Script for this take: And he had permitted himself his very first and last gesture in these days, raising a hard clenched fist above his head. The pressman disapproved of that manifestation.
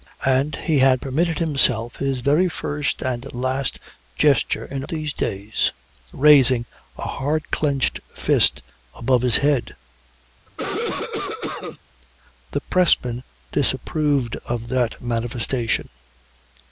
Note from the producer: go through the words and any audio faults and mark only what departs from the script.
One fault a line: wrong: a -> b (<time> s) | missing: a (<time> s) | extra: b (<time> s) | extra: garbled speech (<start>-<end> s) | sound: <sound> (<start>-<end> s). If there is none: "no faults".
sound: cough (10.5-11.8 s)